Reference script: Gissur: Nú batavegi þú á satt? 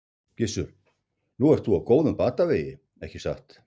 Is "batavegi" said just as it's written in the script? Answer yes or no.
no